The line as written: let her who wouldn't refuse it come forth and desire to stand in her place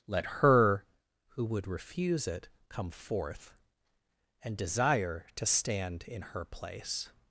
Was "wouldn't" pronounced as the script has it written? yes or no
no